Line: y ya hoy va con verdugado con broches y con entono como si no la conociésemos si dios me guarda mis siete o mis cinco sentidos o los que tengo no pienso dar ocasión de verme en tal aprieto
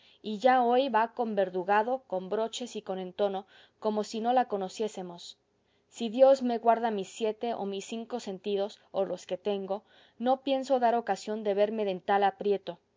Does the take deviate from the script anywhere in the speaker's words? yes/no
no